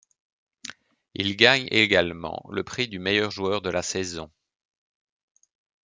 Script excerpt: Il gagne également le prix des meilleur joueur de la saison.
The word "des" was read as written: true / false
false